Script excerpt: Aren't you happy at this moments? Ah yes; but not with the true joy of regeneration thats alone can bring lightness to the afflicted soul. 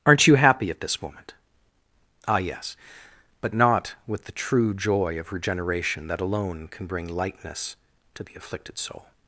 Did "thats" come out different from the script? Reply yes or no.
yes